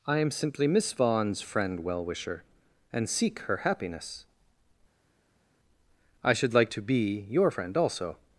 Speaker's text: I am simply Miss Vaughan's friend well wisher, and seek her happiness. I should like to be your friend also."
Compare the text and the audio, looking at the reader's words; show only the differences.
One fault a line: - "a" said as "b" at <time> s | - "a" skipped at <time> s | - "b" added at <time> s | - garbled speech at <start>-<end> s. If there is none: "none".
none